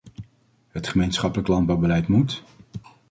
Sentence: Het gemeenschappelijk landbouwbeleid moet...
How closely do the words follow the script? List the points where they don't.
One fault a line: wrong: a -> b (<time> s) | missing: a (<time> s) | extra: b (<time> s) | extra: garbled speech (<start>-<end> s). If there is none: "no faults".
no faults